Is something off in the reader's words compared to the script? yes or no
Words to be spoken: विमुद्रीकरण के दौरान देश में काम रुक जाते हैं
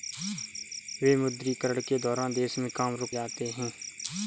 no